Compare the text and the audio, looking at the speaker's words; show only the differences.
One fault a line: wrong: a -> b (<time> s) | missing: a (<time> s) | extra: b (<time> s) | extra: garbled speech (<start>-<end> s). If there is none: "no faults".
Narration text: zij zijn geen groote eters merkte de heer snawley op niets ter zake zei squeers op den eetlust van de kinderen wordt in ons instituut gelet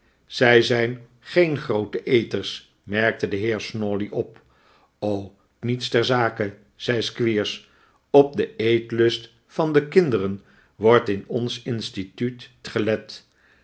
no faults